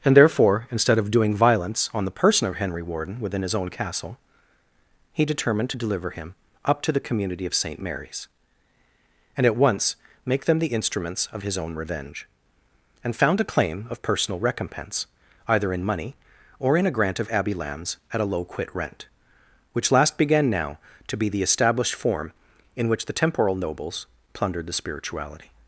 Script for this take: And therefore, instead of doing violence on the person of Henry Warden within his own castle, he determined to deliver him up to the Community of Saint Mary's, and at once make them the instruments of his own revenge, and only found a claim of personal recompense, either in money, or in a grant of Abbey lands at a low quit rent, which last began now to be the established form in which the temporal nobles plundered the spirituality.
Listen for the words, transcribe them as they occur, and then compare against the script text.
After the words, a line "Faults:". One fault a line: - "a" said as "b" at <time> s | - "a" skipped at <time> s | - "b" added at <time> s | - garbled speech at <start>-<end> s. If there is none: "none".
And therefore, instead of doing violence on the person of Henry Warden within his own castle, he determined to deliver him up to the Community of Saint Mary's, and at once make them the instruments of his own revenge, and found a claim of personal recompense, either in money, or in a grant of Abbey lands at a low quit rent, which last began now to be the established form in which the temporal nobles plundered the spirituality.
Faults:
- "only" skipped at 13.2 s